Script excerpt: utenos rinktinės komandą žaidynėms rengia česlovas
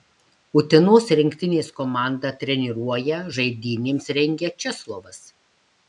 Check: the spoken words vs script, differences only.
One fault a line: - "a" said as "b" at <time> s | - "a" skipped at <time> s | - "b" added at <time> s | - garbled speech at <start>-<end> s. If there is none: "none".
- "treniruoja" added at 2.5 s